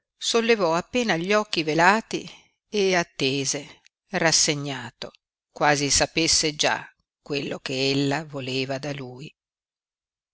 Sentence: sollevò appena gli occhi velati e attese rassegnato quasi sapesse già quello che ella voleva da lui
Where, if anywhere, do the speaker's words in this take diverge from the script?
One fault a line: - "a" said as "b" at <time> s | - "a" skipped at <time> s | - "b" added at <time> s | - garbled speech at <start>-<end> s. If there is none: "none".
none